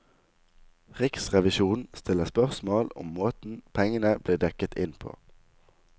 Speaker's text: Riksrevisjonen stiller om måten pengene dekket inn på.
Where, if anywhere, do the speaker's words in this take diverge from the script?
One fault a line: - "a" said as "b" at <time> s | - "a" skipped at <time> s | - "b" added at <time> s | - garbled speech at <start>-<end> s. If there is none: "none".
- "spørsmål" added at 2.2 s
- "ble" added at 4.2 s